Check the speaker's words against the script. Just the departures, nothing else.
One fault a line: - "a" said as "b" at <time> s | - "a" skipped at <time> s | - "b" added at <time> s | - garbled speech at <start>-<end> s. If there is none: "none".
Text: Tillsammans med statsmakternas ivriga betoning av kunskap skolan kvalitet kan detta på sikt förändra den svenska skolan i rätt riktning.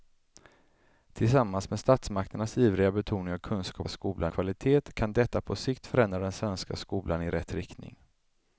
none